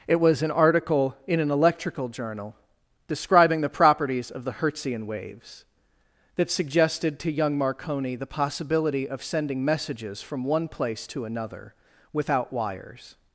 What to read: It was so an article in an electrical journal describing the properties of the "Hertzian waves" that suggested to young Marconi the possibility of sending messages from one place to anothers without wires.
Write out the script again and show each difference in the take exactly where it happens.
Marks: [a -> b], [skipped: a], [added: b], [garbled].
It was [skipped: so] an article in an electrical journal describing the properties of the "Hertzian waves" that suggested to young Marconi the possibility of sending messages from one place to [anothers -> another] without wires.